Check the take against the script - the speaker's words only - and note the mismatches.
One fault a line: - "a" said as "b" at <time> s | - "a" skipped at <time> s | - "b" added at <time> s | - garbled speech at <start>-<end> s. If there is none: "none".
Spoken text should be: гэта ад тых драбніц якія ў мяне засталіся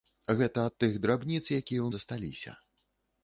- "мяне" skipped at 1.9 s